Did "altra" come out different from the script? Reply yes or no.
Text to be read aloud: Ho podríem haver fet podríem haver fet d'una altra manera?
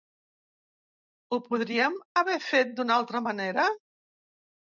no